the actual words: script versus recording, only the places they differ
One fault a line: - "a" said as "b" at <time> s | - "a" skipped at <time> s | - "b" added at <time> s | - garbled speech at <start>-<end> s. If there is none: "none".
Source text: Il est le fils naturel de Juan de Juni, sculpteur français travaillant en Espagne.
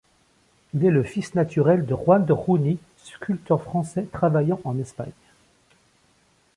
none